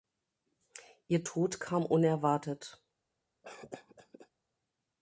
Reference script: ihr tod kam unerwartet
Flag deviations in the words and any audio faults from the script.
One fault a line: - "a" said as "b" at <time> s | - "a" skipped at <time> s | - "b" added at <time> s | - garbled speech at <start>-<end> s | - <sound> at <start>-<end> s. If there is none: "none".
- cough at 3.4-4.3 s